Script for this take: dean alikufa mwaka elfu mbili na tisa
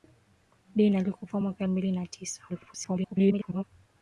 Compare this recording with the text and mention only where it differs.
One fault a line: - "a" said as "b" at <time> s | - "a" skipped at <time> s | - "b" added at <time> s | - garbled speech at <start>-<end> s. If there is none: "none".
- "elfu" skipped at 1.6 s
- garbled speech at 2.5-3.6 s